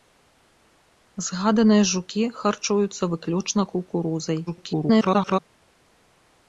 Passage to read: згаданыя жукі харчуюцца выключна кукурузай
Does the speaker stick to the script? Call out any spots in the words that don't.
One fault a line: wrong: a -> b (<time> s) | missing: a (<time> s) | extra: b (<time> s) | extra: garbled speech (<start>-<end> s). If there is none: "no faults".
extra: garbled speech (4.5-5.4 s)